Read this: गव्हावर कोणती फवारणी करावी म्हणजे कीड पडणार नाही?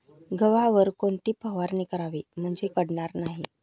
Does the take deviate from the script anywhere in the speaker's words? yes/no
yes